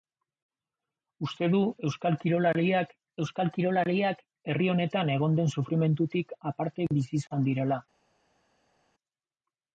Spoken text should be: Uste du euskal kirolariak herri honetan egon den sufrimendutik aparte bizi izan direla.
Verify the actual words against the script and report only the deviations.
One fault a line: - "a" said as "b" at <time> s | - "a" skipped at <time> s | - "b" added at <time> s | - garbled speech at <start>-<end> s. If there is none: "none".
- "euskal kirolariak" added at 3.2 s